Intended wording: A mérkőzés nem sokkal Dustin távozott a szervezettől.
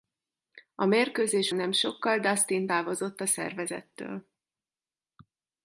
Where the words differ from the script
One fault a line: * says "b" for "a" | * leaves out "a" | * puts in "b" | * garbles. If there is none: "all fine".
all fine